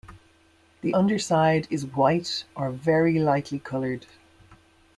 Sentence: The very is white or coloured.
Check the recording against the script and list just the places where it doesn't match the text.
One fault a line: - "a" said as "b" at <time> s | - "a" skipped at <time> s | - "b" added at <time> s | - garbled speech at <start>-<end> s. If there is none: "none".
- "very" said as "underside" at 0.9 s
- "very lightly" added at 2.7 s